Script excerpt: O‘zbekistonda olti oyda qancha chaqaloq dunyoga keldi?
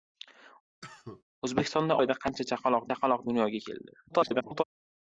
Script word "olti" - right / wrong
wrong